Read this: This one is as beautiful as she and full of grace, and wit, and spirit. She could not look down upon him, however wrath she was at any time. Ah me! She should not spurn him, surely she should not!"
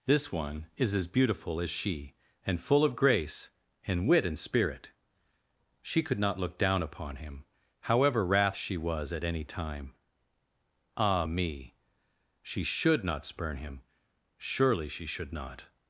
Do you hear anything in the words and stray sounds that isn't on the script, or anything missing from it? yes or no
no